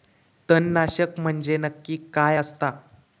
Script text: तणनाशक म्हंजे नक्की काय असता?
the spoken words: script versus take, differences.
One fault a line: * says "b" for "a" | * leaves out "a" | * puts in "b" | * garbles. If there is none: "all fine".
all fine